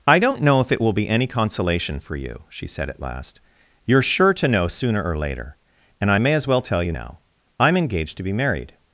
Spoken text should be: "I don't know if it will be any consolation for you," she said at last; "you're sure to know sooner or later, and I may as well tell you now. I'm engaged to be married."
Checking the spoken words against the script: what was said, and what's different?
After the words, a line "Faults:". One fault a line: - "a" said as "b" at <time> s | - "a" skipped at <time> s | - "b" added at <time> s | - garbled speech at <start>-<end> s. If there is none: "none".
"I don't know if it will be any consolation for you," she said at last; "you're sure to know sooner or later, and I may as well tell you now. I'm engaged to be married."
Faults:
none